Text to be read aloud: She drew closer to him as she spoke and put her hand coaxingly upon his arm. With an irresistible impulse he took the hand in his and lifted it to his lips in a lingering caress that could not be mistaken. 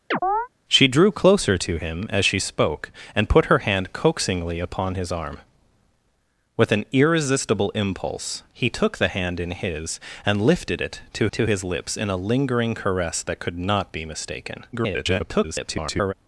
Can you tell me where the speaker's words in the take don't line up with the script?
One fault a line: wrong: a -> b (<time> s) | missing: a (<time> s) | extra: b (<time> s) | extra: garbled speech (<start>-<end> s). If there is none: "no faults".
extra: to (11.3 s)
extra: garbled speech (14.7-16.1 s)